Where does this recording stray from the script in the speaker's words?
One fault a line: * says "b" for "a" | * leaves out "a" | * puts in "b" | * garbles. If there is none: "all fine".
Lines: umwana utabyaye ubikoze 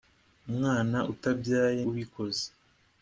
all fine